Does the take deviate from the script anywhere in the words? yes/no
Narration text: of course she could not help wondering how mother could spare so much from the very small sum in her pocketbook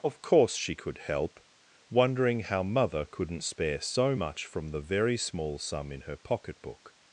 yes